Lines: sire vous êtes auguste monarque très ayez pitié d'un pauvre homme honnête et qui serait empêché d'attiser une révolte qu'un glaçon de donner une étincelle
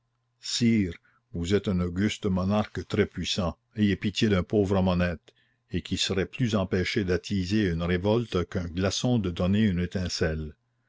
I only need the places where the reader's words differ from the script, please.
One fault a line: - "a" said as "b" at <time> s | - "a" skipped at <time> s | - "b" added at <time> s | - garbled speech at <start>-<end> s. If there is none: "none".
- "un" added at 1.7 s
- "puissant" added at 3.0 s
- "plus" added at 6.2 s